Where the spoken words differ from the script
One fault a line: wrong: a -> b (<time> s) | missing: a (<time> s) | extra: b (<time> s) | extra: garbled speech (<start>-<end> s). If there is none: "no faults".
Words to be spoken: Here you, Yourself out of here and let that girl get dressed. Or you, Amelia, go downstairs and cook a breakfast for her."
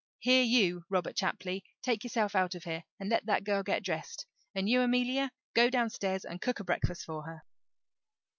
extra: Robert Chapley take (0.9 s)
wrong: Or -> And (4.5 s)